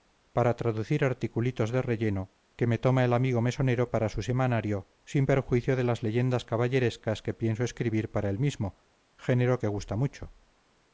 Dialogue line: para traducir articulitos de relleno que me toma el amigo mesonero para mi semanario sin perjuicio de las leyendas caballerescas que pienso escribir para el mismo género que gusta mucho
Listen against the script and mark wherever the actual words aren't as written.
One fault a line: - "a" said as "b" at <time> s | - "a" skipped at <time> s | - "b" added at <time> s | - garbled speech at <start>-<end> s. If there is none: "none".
- "mi" said as "su" at 4.1 s